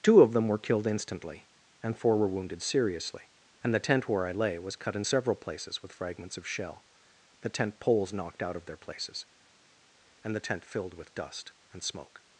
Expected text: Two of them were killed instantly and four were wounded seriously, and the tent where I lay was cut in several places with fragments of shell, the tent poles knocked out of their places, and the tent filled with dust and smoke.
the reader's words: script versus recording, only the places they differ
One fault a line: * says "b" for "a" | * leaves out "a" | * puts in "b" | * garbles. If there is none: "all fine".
all fine